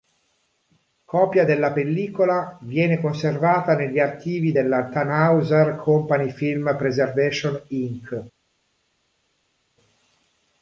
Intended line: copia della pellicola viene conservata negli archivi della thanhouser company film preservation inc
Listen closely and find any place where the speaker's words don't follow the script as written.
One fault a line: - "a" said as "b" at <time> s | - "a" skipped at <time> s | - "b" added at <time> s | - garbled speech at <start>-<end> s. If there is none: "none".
none